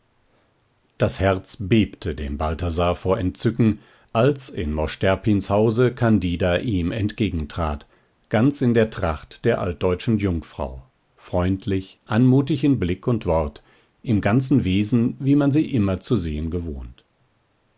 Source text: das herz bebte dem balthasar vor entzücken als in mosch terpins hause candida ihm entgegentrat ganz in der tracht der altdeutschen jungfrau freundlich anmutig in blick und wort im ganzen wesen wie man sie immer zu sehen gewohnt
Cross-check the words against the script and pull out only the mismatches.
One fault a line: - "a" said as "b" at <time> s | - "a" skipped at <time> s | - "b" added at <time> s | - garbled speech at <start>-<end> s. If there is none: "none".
none